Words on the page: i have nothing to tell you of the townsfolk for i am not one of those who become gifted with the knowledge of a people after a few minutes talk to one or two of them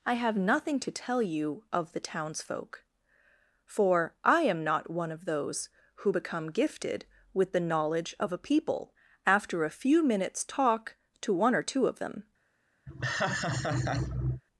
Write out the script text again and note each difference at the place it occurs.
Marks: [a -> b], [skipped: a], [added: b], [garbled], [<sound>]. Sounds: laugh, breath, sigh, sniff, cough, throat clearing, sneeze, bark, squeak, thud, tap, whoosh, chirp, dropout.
i have nothing to tell you of the townsfolk for i am not one of those who become gifted with the knowledge of a people after a few minutes talk to one or two of them [laugh]